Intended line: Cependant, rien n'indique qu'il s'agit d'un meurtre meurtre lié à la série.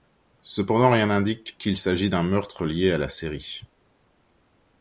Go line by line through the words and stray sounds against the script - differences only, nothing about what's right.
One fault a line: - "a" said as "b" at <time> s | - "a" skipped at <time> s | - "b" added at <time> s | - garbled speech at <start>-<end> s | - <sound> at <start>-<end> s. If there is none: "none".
- "meurtre" skipped at 2.7 s